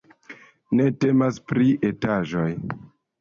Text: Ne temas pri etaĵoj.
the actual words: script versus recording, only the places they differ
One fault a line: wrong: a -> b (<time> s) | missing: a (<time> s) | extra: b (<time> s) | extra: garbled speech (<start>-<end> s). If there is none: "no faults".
no faults